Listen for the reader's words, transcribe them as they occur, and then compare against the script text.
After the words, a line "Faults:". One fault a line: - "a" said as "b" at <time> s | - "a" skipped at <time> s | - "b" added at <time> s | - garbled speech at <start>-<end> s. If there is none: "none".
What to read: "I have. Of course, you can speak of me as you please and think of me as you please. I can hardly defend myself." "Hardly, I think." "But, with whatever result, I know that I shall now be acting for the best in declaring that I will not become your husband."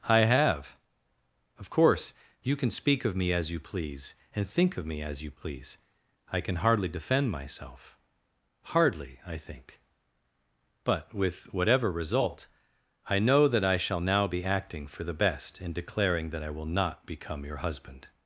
"I have. Of course, you can speak of me as you please and think of me as you please. I can hardly defend myself." "Hardly, I think." "But, with whatever result, I know that I shall now be acting for the best in declaring that I will not become your husband."
Faults:
none